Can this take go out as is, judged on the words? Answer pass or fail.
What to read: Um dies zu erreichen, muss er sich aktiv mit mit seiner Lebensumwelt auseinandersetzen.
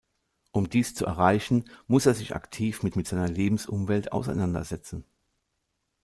pass